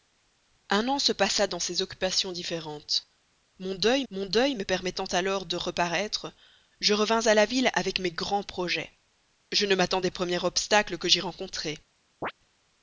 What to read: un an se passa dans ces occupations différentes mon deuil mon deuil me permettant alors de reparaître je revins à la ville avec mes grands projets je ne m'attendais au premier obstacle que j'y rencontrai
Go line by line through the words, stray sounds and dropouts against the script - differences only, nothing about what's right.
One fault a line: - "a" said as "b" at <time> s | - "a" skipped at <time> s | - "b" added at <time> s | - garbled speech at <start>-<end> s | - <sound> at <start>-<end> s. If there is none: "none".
- chirp at 12.2-12.3 s